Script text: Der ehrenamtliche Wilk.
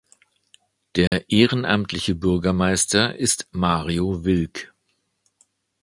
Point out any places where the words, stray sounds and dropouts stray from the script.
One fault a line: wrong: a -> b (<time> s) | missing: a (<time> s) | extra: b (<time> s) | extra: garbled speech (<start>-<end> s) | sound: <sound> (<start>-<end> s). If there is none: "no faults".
sound: dropout (1.1-1.1 s)
extra: Bürgermeister ist Mario (2.1 s)